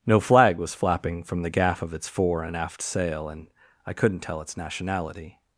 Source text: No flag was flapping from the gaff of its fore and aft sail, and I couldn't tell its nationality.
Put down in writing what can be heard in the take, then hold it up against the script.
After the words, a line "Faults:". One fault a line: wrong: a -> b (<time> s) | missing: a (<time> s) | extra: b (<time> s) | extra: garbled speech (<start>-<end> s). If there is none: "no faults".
No flag was flapping from the gaff of its fore and aft sail, and I couldn't tell its nationality.
Faults:
no faults